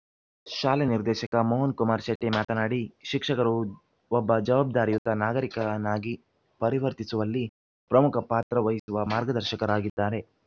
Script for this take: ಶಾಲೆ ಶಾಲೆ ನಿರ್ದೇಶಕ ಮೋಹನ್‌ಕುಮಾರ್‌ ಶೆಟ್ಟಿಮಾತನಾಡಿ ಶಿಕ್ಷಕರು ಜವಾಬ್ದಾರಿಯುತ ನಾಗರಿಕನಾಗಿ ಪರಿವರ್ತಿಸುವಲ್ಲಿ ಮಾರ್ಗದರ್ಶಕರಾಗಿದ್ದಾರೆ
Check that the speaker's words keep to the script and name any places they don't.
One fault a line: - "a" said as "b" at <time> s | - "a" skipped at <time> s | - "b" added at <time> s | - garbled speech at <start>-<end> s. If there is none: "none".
- "ಶಾಲೆ" skipped at 0.8 s
- "ಒಬ್ಬ" added at 4.1 s
- "ಪ್ರಮುಖ ಪಾತ್ರ ವಹಿಸುವ" added at 7.9 s